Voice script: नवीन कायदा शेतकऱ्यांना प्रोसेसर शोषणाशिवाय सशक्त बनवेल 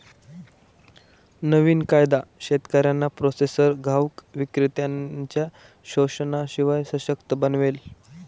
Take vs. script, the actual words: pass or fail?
fail